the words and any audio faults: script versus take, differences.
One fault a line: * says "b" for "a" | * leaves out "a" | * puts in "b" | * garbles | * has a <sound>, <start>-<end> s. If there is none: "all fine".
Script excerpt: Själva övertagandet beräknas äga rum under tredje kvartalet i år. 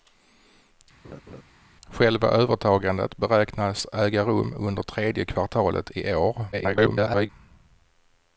* has a laugh, 1.0-1.4 s
* garbles